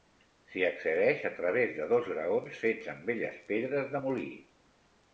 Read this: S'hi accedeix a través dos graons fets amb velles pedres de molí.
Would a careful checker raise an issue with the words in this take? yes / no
yes